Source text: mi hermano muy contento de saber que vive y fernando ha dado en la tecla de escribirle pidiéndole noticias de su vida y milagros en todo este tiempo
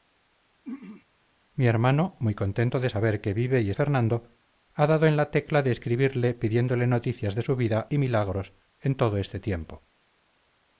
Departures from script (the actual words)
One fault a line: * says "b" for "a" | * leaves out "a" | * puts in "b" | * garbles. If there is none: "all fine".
all fine